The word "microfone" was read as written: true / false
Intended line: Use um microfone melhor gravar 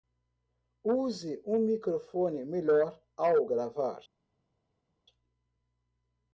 true